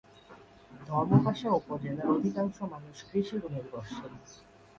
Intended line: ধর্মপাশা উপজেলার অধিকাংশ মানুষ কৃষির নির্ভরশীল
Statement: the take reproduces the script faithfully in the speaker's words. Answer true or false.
true